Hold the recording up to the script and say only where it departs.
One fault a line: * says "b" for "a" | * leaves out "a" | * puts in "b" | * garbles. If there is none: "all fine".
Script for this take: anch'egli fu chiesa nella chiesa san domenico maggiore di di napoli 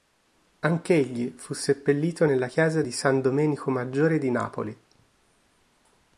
* says "seppellito" for "chiesa"
* puts in "di"
* leaves out "di"